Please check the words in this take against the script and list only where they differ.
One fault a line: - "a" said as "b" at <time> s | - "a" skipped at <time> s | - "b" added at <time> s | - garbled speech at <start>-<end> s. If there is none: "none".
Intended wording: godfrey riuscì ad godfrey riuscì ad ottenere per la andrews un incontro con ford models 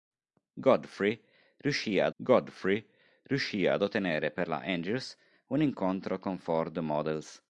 none